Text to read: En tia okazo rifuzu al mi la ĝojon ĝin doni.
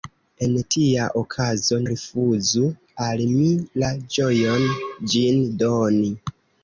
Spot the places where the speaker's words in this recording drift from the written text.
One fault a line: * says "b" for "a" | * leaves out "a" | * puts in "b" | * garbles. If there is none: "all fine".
all fine